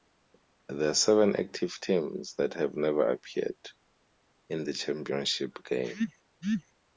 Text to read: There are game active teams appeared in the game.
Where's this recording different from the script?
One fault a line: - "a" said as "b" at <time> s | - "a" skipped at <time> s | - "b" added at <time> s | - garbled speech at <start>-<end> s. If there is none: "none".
- "game" said as "seven" at 0.9 s
- "that have never" added at 2.4 s
- "championship" added at 4.7 s